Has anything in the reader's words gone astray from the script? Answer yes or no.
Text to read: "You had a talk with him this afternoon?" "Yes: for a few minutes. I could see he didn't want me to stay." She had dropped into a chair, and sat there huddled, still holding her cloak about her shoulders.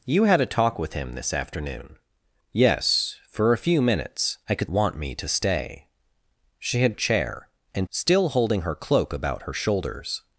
yes